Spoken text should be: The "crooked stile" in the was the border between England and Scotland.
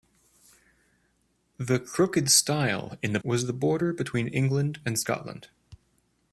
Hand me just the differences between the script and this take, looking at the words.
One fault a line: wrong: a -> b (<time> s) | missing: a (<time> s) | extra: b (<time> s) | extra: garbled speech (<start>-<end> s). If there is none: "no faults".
no faults